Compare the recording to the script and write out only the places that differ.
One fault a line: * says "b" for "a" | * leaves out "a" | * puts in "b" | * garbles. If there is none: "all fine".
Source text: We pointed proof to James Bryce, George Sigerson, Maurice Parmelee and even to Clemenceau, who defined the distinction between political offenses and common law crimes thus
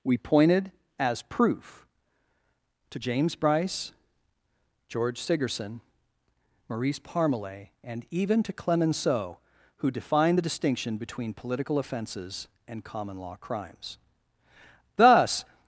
* puts in "as"